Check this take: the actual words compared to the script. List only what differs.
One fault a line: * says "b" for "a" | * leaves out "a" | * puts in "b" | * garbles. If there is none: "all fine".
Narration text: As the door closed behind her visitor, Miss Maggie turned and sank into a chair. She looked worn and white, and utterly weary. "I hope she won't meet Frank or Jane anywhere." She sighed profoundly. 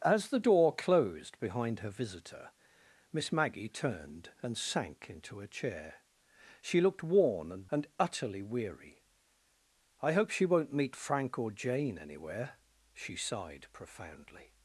* leaves out "white"